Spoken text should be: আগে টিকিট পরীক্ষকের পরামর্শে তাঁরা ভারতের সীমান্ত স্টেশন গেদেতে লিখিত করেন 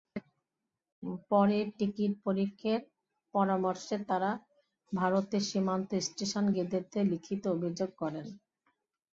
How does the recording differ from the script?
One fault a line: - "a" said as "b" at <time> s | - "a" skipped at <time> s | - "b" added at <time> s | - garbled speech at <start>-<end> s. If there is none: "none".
- "আগে" said as "পরে" at 1.3 s
- "অভিযোগ" added at 7.5 s